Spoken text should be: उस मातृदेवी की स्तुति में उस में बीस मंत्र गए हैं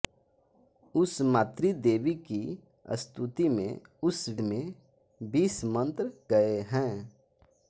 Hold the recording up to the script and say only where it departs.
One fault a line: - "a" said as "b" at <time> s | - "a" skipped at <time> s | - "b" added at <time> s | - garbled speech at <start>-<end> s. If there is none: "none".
none